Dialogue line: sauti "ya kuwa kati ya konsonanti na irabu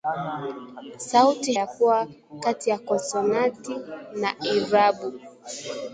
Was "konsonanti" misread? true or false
false